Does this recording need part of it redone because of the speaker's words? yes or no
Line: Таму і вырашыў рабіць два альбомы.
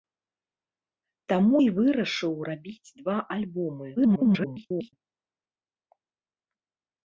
yes